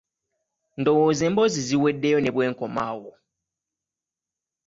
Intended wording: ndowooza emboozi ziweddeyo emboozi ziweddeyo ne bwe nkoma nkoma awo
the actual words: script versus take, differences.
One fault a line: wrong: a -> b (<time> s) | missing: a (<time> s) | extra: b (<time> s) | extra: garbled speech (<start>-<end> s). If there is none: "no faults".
missing: emboozi ziweddeyo (2.2 s)
missing: nkoma (2.8 s)